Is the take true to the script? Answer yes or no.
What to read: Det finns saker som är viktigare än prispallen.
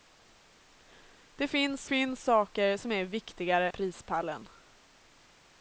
no